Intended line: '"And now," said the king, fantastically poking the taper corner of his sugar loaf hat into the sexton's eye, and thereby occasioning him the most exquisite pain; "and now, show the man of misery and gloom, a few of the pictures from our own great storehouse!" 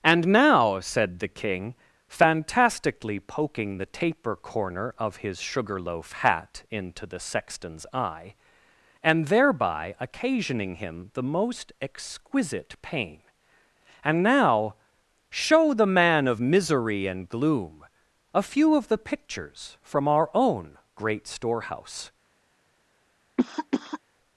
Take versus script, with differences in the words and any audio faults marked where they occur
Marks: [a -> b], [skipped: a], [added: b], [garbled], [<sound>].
'"And now," said the king, fantastically poking the taper corner of his sugar loaf hat into the sexton's eye, and thereby occasioning him the most exquisite pain; "and now, show the man of misery and gloom, a few of the pictures from our own great storehouse!" [cough]